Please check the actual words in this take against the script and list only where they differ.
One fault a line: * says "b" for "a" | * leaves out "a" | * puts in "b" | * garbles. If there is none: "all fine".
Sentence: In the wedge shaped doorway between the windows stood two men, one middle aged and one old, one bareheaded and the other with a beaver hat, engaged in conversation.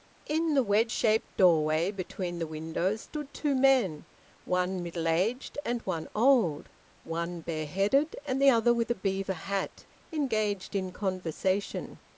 all fine